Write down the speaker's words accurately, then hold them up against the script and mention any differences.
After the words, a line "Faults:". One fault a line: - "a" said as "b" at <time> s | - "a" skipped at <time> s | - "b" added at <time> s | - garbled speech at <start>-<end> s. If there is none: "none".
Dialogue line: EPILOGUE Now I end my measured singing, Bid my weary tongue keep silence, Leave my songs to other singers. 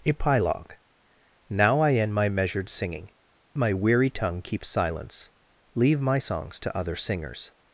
EPILOGUE Now I end my measured singing, My weary tongue keep silence, Leave my songs to other singers.
Faults:
- "Bid" skipped at 3.1 s